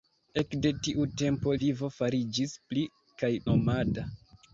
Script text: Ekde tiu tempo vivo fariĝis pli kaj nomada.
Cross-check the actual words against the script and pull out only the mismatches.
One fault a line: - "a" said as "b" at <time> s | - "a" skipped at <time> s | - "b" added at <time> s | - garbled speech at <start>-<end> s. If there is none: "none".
none